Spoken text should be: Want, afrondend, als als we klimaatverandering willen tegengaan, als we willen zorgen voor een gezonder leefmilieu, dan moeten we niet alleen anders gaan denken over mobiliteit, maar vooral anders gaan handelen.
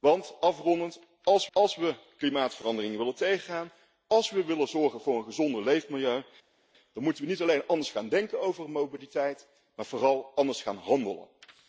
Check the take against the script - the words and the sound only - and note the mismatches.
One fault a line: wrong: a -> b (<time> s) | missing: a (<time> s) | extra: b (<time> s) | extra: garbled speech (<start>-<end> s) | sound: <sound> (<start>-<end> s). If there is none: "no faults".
no faults